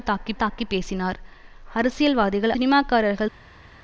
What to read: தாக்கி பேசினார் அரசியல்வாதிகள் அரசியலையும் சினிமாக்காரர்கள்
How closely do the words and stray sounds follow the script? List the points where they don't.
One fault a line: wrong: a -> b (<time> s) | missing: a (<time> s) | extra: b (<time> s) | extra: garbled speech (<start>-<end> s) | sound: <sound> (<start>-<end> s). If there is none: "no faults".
extra: தாக்கி (0.3 s)
missing: அரசியலையும் (2.5 s)